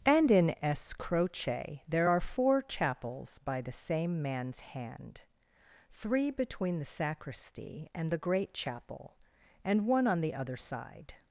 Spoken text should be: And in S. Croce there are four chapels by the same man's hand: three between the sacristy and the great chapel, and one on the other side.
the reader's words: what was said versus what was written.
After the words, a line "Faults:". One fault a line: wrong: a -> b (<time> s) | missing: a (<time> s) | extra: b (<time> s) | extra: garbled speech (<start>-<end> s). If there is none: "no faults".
And in S. Croce there are four chapels by the same man's hand: three between the sacristy and the great chapel, and one on the other side.
Faults:
no faults